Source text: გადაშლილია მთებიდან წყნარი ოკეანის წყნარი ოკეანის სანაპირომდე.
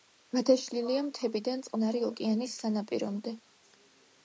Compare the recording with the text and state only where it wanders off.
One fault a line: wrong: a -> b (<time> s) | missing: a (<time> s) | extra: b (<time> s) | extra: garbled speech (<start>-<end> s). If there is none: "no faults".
missing: წყნარი ოკეანის (2.6 s)